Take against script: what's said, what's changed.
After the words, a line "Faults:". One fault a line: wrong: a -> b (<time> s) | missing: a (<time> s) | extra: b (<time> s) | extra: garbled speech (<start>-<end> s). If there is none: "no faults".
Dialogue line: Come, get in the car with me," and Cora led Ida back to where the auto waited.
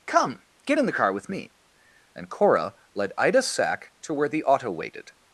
Come, get in the car with me," and Cora led Ida sack to where the auto waited.
Faults:
wrong: back -> sack (3.4 s)